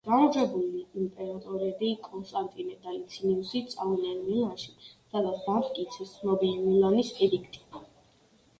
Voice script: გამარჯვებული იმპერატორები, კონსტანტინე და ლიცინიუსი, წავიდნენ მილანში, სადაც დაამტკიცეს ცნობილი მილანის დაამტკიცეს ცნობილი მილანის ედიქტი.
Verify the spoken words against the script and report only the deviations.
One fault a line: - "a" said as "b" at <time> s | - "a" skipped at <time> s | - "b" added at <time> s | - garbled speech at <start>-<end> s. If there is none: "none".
- "დაამტკიცეს ცნობილი მილანის" skipped at 7.1 s